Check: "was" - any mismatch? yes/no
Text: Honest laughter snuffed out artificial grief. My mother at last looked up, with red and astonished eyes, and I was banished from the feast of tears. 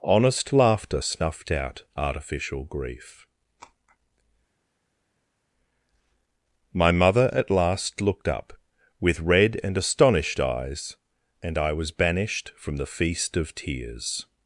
no